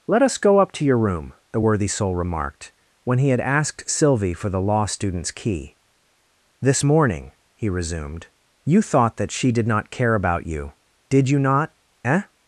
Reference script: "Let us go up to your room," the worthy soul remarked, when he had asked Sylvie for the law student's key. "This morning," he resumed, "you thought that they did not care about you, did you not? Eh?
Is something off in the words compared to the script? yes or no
yes